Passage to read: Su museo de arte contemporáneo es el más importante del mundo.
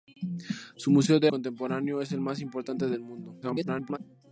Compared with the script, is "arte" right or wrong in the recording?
wrong